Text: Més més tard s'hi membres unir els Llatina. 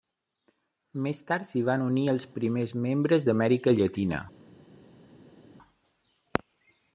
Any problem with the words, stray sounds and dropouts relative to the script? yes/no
yes